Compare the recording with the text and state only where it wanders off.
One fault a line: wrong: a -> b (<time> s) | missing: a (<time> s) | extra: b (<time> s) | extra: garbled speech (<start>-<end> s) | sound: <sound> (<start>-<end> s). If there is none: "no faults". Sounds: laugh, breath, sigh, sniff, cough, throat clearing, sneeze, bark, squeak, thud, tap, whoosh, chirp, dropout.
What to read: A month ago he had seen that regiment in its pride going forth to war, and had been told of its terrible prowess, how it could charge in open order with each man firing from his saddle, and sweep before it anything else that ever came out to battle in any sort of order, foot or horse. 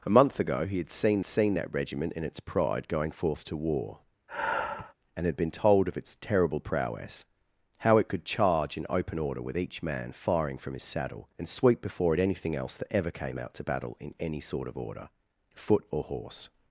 extra: seen (1.2 s)
sound: sigh (4.3-4.9 s)